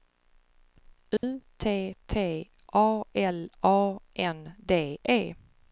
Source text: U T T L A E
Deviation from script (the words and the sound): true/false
true